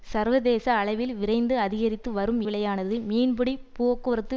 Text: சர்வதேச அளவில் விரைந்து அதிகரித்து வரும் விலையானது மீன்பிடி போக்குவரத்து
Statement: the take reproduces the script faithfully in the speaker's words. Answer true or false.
true